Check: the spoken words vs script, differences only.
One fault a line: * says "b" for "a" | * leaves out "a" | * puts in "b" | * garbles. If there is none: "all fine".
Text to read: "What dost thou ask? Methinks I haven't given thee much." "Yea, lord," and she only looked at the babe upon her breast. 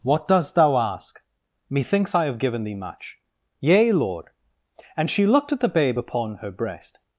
* says "have" for "haven't"
* leaves out "only"